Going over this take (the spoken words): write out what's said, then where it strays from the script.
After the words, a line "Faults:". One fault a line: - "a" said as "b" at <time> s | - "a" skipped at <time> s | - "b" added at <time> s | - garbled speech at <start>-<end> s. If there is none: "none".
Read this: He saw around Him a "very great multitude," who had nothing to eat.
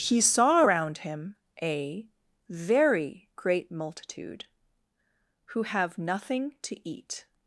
He saw around Him a "very great multitude," who have nothing to eat.
Faults:
- "had" said as "have" at 5.6 s